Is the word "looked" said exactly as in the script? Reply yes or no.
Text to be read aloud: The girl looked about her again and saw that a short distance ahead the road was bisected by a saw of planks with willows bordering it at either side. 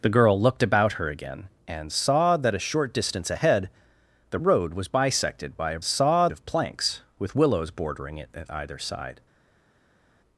yes